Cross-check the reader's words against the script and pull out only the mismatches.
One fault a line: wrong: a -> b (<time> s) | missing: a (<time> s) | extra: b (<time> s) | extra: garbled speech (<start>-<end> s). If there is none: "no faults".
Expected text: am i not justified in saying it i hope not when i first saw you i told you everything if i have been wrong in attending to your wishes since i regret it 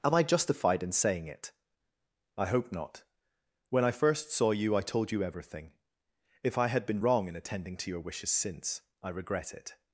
missing: not (0.2 s)
wrong: have -> had (6.7 s)